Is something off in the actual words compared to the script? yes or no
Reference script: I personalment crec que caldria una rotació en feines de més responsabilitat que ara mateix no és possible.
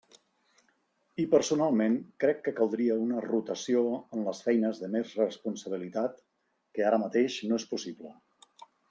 yes